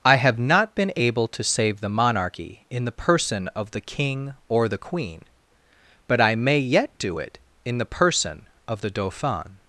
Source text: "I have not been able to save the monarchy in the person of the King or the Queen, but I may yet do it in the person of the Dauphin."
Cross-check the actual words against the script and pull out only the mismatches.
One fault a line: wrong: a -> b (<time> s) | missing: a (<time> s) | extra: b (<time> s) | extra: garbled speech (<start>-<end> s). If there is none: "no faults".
no faults